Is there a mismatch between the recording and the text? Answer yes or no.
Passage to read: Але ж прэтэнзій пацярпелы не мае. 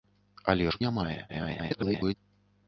yes